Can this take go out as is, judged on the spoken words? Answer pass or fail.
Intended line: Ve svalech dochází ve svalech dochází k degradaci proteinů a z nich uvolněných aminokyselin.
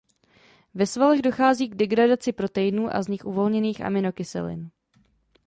fail